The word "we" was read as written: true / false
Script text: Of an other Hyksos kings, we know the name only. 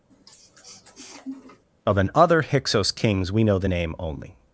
true